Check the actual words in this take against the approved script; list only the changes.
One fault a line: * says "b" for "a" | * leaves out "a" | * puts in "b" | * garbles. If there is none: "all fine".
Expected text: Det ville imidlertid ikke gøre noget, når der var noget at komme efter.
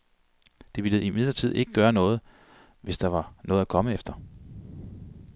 * says "hvis" for "når"